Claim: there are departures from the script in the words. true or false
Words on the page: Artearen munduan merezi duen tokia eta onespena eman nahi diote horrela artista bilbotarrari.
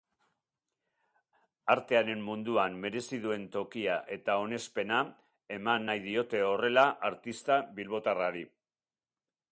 false